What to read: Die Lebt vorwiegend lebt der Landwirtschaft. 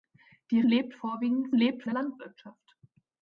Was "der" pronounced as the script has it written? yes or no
yes